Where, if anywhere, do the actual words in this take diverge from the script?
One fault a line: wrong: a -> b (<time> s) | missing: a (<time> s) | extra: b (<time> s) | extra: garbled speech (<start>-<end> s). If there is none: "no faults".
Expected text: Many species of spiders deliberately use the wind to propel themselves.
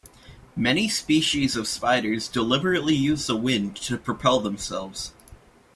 no faults